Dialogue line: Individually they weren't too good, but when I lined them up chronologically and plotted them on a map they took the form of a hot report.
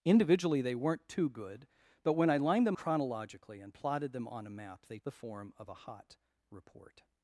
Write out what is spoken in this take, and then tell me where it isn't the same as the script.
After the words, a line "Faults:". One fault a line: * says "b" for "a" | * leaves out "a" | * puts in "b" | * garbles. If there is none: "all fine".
Individually they weren't too good, but when I lined them chronologically and plotted them on a map they the form of a hot report.
Faults:
* leaves out "up"
* leaves out "took"